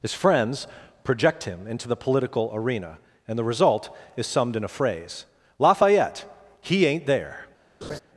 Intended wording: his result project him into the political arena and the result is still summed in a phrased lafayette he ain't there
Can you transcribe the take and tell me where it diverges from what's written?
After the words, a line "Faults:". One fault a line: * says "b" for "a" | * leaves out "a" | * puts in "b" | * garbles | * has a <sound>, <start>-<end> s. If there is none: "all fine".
his friends project him into the political arena and the result is summed in a phrase lafayette he ain't there
Faults:
* says "friends" for "result"
* leaves out "still"
* says "phrase" for "phrased"
* has a laugh, 7.8-8.0 s